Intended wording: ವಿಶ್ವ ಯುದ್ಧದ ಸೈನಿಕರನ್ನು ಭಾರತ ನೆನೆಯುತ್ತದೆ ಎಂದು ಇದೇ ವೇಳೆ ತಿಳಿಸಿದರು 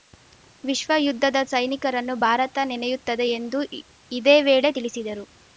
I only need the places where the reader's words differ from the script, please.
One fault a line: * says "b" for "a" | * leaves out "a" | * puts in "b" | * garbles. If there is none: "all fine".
all fine